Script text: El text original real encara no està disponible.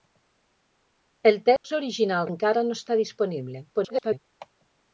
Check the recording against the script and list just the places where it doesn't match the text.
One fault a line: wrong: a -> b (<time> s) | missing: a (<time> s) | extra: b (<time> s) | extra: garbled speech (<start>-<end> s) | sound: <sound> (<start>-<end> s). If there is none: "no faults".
sound: dropout (1.6-1.6 s)
missing: real (2.3 s)
extra: garbled speech (3.7-4.2 s)